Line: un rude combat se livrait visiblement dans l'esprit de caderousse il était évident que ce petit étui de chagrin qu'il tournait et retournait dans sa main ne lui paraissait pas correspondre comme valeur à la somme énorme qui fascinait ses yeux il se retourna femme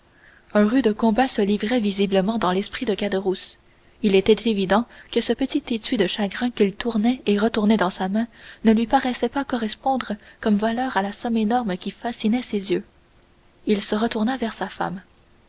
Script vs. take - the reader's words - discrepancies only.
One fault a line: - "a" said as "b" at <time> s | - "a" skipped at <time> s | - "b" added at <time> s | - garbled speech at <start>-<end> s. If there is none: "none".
- "vers sa" added at 14.4 s